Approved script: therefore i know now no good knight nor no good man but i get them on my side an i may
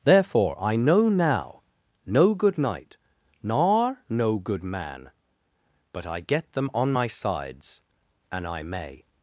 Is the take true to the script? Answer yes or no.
no